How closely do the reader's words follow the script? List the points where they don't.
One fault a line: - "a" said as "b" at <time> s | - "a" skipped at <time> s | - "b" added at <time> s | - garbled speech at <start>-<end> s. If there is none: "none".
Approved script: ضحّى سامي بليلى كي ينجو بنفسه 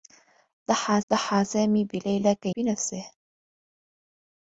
- "ضحّى" added at 1.1 s
- "ينجو" skipped at 2.5 s